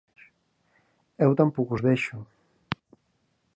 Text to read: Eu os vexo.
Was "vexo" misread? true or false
false